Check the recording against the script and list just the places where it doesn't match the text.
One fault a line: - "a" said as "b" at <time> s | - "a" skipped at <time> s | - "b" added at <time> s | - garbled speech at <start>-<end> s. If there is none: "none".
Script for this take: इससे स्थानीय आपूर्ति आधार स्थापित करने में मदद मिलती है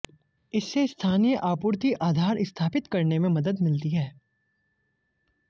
none